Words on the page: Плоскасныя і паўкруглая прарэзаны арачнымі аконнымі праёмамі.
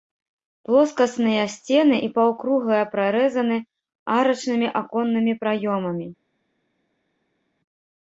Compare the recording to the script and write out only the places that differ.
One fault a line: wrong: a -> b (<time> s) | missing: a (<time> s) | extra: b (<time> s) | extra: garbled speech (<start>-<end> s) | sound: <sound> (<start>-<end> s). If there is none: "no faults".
extra: сцены (1.6 s)